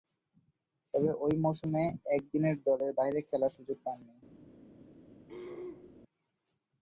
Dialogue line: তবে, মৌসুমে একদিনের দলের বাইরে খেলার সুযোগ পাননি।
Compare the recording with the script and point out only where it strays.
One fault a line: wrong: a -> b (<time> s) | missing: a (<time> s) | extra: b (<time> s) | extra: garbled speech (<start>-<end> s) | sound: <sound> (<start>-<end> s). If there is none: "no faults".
extra: ঐ (1.2 s)
sound: throat clearing (5.3-6.0 s)